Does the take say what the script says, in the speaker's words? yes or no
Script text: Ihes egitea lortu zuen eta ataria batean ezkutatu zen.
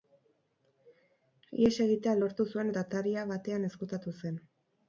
yes